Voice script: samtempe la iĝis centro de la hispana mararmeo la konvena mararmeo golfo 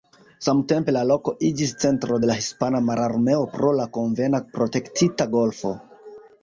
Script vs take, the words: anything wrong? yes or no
yes